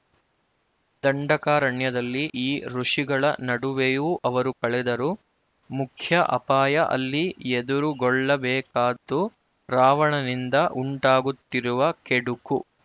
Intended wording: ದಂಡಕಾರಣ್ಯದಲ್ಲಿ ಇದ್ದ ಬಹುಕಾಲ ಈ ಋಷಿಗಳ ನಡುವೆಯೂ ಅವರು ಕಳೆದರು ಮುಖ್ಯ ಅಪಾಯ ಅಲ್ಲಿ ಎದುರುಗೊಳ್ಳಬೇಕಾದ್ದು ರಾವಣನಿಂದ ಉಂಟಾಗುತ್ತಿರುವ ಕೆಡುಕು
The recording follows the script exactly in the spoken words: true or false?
false